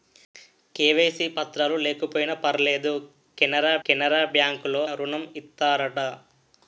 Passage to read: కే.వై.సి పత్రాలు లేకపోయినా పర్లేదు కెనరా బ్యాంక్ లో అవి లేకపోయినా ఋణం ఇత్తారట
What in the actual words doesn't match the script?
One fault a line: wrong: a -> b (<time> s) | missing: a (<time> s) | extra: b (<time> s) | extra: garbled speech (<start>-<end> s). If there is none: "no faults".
extra: కెనరా (3.8 s)
missing: అవి లేకపోయినా (4.8 s)